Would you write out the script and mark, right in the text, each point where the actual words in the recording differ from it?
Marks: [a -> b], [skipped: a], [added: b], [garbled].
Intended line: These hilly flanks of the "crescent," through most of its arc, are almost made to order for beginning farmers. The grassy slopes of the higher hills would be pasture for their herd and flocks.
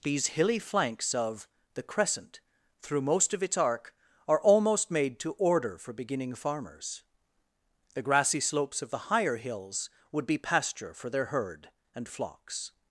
These hilly flanks of the "crescent," through most of its arc, are almost made to order for beginning farmers. The grassy slopes of the higher hills would be pasture for their herd and flocks.